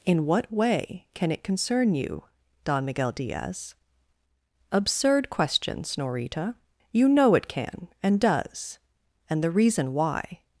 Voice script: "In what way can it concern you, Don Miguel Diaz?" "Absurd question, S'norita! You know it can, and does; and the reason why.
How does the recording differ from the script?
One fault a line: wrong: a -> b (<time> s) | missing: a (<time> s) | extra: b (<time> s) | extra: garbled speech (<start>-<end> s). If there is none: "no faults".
no faults